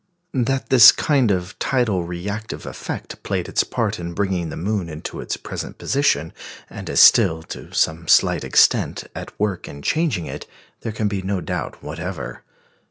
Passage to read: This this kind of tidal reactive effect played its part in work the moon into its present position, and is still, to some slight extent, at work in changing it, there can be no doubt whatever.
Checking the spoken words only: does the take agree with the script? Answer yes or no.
no